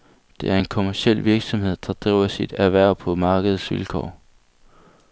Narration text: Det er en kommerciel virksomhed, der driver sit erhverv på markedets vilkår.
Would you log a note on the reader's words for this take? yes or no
no